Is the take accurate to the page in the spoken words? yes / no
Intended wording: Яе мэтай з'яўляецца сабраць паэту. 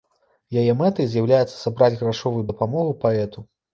no